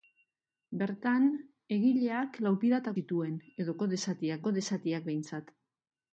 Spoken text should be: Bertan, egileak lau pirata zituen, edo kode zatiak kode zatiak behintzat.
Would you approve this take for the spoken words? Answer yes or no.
yes